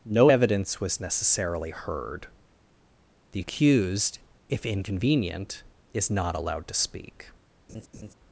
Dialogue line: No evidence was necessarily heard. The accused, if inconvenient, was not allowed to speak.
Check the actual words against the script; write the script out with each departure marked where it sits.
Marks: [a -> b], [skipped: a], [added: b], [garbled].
No evidence was necessarily heard. The accused, if inconvenient, [was -> is] not allowed to speak.